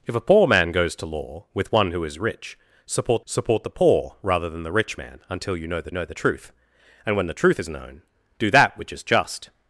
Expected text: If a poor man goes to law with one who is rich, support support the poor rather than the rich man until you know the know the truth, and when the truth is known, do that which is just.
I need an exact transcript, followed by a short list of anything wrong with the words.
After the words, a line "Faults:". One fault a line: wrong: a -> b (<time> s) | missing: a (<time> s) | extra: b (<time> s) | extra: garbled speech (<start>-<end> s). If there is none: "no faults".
If a poor man goes to law with one who is rich, support support the poor rather than the rich man until you know the know the truth, and when the truth is known, do that which is just.
Faults:
no faults